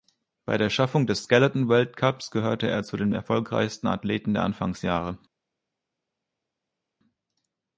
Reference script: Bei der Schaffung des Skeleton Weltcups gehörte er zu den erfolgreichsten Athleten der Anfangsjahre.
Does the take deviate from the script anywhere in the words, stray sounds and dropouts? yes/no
no